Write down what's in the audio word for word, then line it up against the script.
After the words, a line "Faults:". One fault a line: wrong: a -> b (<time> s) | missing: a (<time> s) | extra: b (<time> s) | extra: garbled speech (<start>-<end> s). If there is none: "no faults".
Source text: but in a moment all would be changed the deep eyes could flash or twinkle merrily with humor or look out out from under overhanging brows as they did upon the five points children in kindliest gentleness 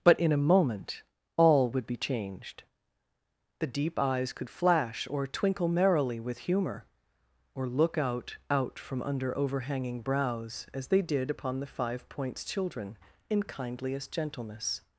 but in a moment all would be changed the deep eyes could flash or twinkle merrily with humor or look out out from under overhanging brows as they did upon the five points children in kindliest gentleness
Faults:
no faults